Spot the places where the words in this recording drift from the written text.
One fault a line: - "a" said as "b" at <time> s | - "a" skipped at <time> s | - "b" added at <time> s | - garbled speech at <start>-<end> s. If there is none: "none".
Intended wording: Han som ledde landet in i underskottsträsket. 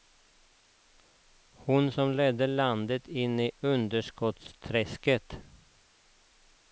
- "Han" said as "Hon" at 1.5 s